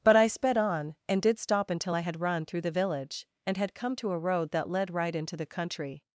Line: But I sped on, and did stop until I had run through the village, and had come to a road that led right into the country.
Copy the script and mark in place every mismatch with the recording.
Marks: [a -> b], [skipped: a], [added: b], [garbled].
But I sped on, and did stop until I had run through the village, and had come to a road that led right into the country.